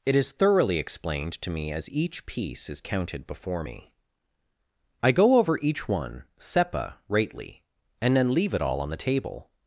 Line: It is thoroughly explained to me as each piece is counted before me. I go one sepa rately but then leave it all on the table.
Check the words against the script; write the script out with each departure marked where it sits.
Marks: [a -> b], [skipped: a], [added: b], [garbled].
It is thoroughly explained to me as each piece is counted before me. I go [added: over each] one sepa rately [but -> and] then leave it all on the table.